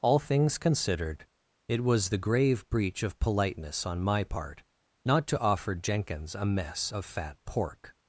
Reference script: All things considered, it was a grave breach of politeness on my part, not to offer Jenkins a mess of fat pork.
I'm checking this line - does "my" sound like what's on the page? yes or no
yes